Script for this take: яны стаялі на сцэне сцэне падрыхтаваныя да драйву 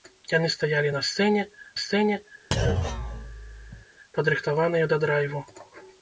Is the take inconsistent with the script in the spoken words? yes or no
no